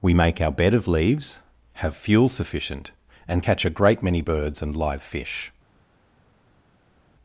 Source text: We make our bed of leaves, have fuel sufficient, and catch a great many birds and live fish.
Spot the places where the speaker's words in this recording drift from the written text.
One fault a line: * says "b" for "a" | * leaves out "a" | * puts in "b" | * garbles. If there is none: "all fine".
all fine